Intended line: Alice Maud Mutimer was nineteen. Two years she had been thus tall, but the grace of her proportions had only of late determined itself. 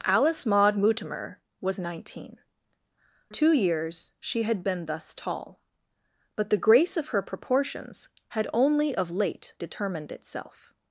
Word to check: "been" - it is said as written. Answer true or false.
true